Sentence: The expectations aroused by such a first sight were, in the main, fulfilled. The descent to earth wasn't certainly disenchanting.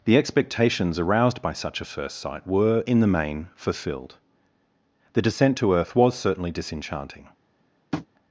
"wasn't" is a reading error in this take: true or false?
true